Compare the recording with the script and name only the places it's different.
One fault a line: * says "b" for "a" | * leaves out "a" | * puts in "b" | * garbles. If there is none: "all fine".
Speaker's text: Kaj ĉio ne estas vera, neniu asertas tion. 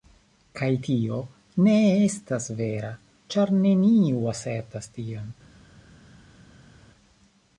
* says "tio" for "ĉio"
* puts in "ĉar"